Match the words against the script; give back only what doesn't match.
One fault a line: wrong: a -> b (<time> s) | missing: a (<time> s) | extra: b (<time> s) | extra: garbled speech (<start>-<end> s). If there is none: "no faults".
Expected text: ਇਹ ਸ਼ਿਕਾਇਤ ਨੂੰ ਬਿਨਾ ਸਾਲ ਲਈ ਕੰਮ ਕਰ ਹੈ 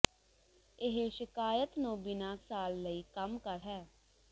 no faults